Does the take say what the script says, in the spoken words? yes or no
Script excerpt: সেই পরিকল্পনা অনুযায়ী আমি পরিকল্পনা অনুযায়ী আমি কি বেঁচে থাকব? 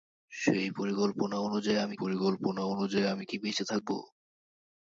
yes